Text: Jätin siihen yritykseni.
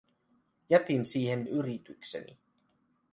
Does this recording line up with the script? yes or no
yes